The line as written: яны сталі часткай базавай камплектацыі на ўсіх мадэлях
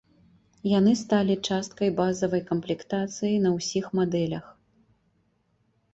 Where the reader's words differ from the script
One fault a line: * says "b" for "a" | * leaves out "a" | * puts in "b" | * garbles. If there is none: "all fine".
all fine